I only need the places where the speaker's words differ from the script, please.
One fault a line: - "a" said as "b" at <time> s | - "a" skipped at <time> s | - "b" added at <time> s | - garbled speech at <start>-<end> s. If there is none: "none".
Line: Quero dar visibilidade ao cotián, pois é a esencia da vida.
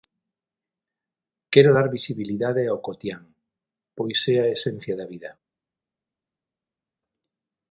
none